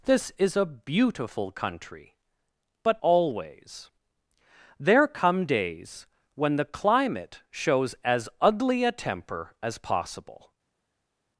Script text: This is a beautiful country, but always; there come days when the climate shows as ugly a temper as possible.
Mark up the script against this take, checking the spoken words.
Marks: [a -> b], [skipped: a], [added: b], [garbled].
This is a beautiful country, but always; there come days when the climate shows as ugly a temper as possible.